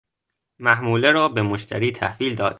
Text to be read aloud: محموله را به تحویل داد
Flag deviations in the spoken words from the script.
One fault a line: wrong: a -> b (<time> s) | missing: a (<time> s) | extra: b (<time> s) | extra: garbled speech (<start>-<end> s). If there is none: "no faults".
extra: مشتری (1.4 s)